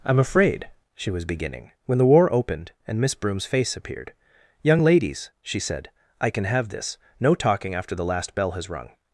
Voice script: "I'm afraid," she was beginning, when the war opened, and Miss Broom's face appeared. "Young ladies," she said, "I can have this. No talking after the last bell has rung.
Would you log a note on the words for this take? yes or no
no